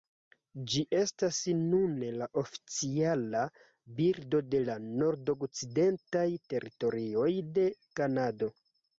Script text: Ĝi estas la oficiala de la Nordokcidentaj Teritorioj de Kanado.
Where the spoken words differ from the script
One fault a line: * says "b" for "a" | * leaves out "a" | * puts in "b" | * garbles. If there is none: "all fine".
* puts in "nune"
* puts in "birdo"